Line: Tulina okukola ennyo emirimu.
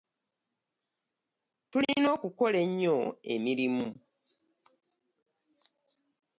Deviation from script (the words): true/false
false